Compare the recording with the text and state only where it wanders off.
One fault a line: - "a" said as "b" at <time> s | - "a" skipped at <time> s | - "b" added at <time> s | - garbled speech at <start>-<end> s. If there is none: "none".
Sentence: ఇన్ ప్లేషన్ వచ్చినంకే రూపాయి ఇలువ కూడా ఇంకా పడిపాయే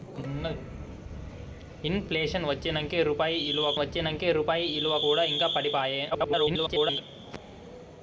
- "వచ్చినంకే రూపాయి ఇలువ" added at 3.8 s
- garbled speech at 6.1-7.0 s